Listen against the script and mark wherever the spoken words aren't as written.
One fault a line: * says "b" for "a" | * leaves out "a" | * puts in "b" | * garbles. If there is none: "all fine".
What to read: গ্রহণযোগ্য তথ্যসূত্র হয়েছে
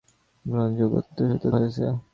all fine